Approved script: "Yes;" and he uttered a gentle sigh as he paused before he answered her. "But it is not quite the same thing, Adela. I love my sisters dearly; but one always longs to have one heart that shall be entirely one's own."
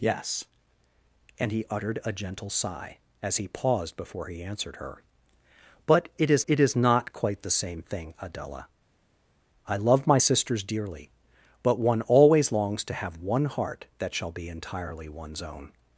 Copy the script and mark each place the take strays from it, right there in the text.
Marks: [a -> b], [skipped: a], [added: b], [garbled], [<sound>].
"Yes;" and he uttered a gentle sigh as he paused before he answered her. "But it is [added: it is] not quite the same thing, Adela. I love my sisters dearly; but one always longs to have one heart that shall be entirely one's own."